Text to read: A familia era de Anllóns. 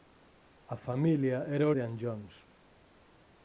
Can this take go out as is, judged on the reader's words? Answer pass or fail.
pass